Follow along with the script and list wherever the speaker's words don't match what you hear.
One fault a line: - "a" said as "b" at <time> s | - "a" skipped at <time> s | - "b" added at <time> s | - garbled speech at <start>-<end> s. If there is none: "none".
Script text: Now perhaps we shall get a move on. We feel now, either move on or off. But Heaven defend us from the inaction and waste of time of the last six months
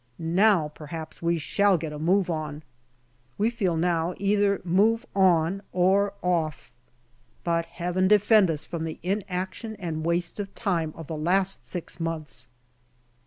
none